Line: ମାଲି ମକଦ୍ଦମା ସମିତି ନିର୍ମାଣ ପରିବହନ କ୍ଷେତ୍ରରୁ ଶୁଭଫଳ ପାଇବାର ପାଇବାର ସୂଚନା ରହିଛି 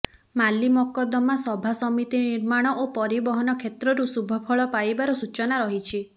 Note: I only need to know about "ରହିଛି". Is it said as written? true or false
true